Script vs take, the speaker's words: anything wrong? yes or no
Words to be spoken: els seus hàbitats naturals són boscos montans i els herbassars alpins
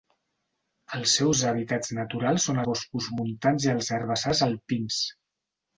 no